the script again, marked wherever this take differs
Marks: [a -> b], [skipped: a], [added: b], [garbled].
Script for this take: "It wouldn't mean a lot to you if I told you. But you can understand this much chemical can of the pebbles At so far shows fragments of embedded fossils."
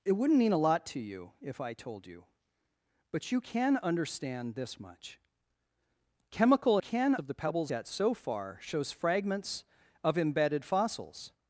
"It wouldn't mean a lot to you if I told you. But you can understand this much chemical can of the pebbles At so far shows fragments of embedded fossils."